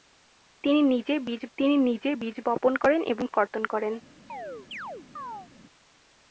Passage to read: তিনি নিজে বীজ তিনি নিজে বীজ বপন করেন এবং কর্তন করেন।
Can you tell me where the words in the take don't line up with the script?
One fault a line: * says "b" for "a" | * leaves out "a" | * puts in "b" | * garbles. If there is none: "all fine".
all fine